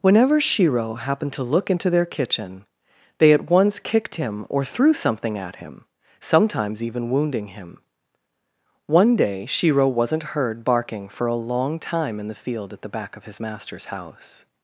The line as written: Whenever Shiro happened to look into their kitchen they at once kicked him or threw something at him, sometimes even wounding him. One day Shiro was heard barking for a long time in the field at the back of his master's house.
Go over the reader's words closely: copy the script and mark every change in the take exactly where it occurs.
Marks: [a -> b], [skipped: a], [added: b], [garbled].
Whenever Shiro happened to look into their kitchen they at once kicked him or threw something at him, sometimes even wounding him. One day Shiro [was -> wasn't] heard barking for a long time in the field at the back of his master's house.